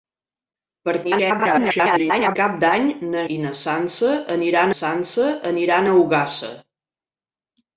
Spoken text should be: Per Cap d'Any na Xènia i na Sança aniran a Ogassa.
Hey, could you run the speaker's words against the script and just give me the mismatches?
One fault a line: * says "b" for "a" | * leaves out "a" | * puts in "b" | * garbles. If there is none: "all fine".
* garbles
* leaves out "Xènia"
* puts in "Sança aniran"